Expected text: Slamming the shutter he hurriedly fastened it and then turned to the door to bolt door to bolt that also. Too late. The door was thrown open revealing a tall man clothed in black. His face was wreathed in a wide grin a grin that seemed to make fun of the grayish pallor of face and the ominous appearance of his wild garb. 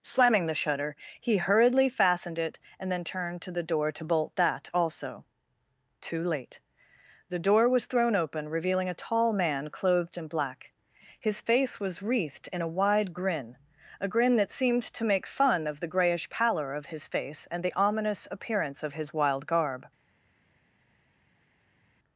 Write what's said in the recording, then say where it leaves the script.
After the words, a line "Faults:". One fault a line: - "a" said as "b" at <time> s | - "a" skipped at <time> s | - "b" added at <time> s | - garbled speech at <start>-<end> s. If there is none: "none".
Slamming the shutter he hurriedly fastened it and then turned to the door to bolt that also. Too late. The door was thrown open revealing a tall man clothed in black. His face was wreathed in a wide grin a grin that seemed to make fun of the grayish pallor of his face and the ominous appearance of his wild garb.
Faults:
- "door to bolt" skipped at 4.3 s
- "his" added at 16.9 s